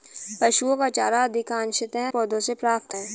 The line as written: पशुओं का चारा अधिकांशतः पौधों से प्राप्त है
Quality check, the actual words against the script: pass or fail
pass